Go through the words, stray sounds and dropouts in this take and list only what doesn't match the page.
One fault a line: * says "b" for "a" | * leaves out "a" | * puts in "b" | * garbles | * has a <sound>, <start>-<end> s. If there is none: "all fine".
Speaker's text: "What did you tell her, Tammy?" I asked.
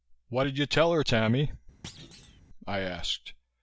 * has a thud, 1.8-2.4 s